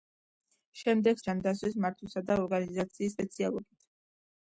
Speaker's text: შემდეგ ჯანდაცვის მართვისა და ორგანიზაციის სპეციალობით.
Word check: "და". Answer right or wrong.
right